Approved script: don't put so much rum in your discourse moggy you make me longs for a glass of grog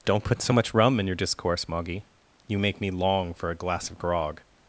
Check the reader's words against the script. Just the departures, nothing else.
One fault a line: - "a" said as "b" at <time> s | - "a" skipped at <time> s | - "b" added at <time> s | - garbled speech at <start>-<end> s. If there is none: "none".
- "longs" said as "long" at 2.9 s